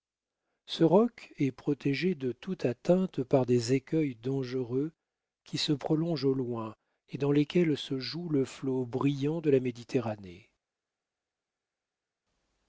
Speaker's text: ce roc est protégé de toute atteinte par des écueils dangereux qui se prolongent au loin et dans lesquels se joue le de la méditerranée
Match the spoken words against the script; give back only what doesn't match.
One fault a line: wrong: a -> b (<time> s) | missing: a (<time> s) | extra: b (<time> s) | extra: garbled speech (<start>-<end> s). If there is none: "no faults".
extra: flot brillant (8.4 s)